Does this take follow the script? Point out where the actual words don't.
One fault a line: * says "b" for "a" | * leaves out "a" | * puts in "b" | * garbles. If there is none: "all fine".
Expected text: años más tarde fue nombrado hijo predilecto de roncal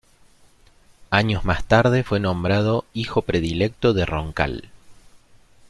all fine